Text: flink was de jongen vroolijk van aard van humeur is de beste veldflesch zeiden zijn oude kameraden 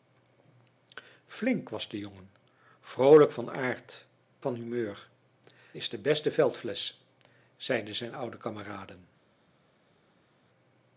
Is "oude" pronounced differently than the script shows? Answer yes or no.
no